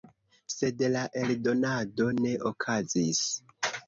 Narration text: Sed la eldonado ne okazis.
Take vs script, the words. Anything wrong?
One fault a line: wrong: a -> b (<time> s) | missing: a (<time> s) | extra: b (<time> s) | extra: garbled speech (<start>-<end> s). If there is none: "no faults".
no faults